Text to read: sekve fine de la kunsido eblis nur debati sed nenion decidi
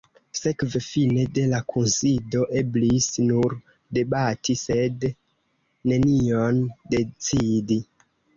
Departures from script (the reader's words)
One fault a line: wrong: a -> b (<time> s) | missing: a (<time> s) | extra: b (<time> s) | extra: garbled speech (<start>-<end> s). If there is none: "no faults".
no faults